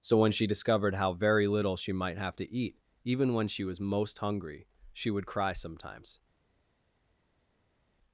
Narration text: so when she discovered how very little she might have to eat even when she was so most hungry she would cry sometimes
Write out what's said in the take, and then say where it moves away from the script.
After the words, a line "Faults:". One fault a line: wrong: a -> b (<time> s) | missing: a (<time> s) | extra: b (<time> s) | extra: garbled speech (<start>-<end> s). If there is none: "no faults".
so when she discovered how very little she might have to eat even when she was most hungry she would cry sometimes
Faults:
missing: so (3.8 s)